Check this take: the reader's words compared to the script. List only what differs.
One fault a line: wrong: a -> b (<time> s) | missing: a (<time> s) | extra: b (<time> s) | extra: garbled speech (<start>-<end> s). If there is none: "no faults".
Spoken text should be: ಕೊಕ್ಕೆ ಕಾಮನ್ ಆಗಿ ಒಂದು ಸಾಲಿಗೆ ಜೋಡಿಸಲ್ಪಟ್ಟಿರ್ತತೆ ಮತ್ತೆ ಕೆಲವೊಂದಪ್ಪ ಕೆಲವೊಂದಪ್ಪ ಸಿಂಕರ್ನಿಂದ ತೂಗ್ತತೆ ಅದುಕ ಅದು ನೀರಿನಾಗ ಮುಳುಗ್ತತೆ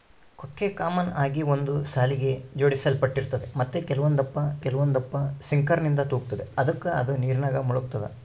no faults